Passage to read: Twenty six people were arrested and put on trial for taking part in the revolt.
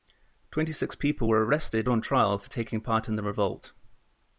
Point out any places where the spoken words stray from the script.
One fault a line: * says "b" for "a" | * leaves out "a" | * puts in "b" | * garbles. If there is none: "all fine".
* leaves out "and put"